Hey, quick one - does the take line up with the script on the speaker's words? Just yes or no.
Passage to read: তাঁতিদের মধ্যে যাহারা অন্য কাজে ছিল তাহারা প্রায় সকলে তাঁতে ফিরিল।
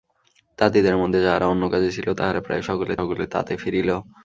no